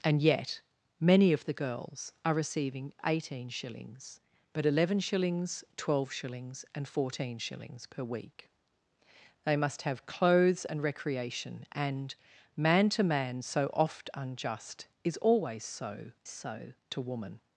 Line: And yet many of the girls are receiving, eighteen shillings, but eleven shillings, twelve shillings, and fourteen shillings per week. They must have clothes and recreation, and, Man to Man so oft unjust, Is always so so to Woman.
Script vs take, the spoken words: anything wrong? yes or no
no